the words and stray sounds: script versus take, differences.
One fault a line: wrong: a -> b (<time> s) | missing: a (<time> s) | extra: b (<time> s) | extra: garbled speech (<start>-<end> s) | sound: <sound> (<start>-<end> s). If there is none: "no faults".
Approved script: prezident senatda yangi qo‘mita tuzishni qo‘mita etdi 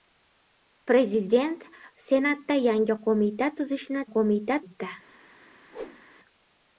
sound: whoosh (5.7-6.0 s)